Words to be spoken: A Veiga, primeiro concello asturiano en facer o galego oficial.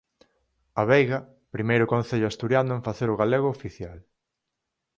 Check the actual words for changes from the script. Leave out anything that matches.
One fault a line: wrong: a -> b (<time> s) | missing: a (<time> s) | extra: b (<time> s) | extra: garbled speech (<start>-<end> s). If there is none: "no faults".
no faults